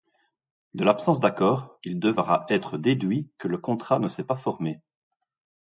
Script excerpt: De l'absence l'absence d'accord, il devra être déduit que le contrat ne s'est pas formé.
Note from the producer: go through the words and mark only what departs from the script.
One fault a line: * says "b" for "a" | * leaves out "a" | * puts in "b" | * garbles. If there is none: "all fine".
* leaves out "l'absence"